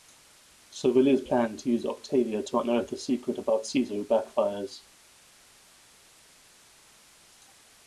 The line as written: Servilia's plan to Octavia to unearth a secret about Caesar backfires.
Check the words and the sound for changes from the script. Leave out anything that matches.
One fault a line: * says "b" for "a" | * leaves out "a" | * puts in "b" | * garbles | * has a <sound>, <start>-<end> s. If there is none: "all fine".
* puts in "use"